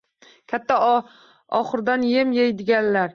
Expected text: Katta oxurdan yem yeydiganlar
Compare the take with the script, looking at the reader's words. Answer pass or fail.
pass